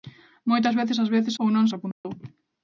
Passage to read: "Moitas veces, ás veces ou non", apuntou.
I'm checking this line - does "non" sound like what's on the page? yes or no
yes